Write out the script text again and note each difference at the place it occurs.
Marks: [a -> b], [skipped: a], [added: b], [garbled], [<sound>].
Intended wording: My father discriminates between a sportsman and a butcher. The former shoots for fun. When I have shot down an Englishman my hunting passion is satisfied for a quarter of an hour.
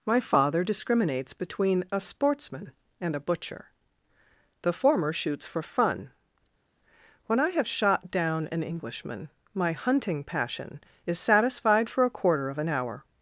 My father discriminates between a sportsman and a butcher. The former shoots for fun. When I have shot down an Englishman my hunting passion is satisfied for a quarter of an hour.